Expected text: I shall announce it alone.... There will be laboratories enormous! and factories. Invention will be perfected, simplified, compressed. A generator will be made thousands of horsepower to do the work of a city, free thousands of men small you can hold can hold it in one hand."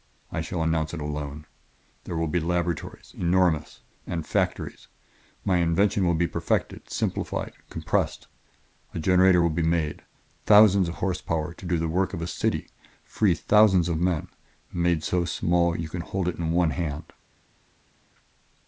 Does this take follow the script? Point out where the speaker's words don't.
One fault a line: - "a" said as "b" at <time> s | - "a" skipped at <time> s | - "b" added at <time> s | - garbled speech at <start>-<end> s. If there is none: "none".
- "My" added at 5.4 s
- "made so" added at 14.7 s
- "can hold" skipped at 16.3 s